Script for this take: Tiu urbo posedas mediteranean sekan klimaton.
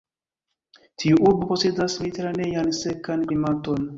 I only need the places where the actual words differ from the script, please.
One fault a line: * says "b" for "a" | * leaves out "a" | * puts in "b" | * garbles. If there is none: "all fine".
all fine